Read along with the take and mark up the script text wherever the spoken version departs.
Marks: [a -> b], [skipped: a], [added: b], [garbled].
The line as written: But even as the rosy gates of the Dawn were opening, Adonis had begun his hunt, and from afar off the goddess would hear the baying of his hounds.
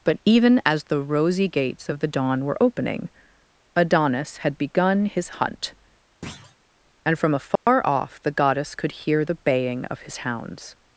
But even as the rosy gates of the Dawn were opening, Adonis had begun his hunt, and from afar off the goddess [would -> could] hear the baying of his hounds.